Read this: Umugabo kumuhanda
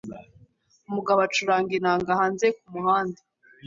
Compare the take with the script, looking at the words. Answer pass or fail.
fail